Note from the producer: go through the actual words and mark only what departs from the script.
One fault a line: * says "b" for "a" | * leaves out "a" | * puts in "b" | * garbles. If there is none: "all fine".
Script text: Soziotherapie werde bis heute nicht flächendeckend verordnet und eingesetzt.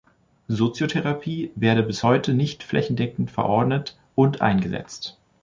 all fine